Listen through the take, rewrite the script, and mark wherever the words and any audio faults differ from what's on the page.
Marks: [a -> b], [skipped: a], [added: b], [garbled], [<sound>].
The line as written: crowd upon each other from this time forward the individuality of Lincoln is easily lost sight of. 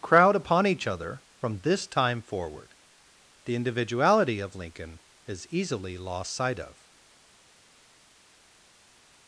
crowd upon each other from this time forward the individuality of Lincoln is easily lost sight of.